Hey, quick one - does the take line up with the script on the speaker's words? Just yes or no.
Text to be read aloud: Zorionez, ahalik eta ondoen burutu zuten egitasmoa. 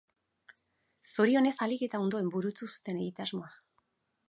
yes